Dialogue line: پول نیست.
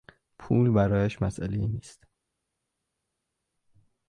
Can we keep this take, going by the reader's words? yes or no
no